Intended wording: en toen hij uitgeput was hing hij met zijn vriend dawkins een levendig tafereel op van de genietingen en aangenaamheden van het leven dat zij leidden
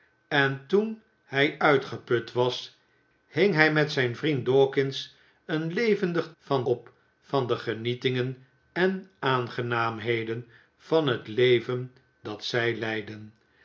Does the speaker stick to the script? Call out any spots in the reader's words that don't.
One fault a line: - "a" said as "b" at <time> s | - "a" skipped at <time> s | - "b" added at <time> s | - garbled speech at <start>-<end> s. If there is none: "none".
- "tafereel" said as "van" at 6.4 s